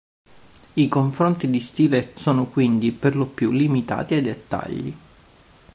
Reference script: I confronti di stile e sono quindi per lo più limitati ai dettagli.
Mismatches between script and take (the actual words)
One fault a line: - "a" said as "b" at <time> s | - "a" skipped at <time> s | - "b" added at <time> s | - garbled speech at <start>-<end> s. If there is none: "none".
none